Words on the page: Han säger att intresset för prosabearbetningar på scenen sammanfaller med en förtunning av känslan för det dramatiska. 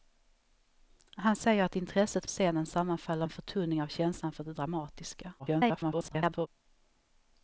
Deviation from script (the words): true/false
true